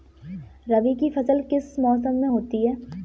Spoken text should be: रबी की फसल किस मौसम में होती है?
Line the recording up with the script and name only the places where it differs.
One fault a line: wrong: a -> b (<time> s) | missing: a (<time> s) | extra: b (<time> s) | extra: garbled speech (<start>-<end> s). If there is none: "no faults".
no faults